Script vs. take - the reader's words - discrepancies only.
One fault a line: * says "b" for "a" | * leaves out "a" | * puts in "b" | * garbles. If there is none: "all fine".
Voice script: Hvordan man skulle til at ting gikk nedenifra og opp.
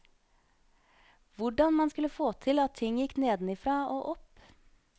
* puts in "få"